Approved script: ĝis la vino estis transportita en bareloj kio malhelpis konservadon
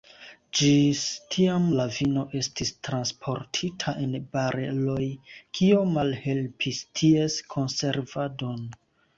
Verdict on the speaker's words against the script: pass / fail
fail